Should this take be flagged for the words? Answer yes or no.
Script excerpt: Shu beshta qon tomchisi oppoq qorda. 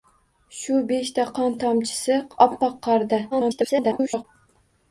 yes